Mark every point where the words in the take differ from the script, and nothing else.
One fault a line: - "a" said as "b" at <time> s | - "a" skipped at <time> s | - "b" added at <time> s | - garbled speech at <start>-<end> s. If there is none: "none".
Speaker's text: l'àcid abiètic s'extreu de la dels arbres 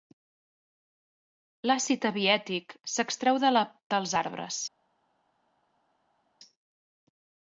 none